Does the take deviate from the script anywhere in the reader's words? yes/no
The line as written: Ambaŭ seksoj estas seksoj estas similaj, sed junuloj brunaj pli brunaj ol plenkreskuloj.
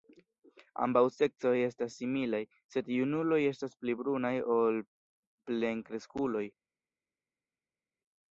yes